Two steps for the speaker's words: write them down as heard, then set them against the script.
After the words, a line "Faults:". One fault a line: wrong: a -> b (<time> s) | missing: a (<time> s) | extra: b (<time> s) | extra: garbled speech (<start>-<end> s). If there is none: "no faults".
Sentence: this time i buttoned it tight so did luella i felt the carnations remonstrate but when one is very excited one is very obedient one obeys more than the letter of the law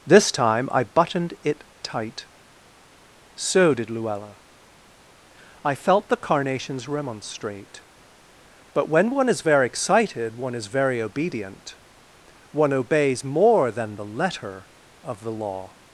this time i buttoned it tight so did luella i felt the carnations remonstrate but when one is very excited one is very obedient one obeys more than the letter of the law
Faults:
no faults